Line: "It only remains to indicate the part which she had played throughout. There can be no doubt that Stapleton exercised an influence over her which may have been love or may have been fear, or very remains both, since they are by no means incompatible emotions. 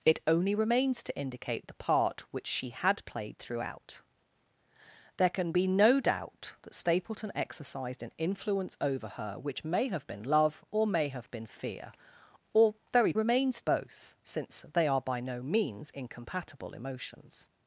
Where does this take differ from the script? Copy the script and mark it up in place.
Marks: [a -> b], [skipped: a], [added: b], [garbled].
"It only remains to indicate the part which she had played throughout. There can be no doubt that Stapleton exercised an influence over her which may have been love or may have been fear, or very remains both, since they are by no means incompatible emotions.